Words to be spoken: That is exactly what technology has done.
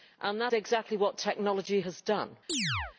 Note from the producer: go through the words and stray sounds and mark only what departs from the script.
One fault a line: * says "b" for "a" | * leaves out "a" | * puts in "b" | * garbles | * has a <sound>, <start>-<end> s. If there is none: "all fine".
* leaves out "is"
* has a chirp, 2.5-3.0 s